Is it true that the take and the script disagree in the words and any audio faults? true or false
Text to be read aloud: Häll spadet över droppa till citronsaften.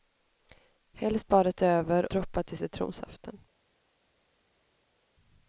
false